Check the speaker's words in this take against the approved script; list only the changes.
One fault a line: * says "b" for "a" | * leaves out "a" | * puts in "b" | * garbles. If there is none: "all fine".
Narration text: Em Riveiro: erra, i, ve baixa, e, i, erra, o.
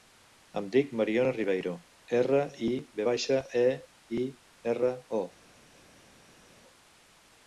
* puts in "dic Mariona"